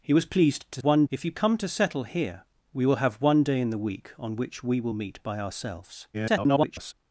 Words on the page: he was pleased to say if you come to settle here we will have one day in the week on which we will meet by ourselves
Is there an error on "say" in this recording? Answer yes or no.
yes